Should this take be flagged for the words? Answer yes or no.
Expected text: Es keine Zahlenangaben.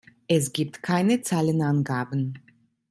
yes